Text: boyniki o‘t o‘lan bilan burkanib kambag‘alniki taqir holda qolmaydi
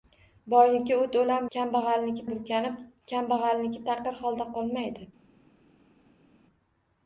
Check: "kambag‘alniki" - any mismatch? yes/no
no